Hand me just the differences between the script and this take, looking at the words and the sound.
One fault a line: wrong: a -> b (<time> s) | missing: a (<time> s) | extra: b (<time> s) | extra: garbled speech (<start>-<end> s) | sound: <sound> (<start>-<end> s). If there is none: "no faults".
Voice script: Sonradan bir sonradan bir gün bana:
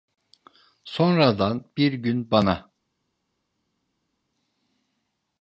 missing: sonradan bir (1.9 s)